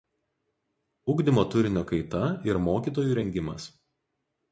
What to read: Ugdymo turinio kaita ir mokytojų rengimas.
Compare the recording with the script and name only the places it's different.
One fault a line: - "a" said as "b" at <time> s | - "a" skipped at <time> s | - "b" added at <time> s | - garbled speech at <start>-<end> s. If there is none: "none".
none